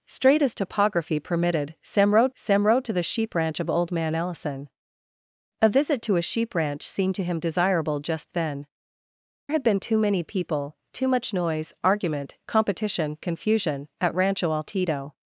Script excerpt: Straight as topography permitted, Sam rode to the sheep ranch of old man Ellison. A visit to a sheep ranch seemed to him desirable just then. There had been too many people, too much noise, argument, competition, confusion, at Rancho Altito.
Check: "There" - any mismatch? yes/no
yes